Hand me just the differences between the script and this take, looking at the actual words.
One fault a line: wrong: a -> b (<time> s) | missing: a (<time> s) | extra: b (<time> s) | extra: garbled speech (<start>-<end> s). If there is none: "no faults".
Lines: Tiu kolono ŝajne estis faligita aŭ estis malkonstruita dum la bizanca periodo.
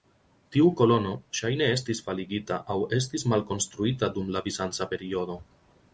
no faults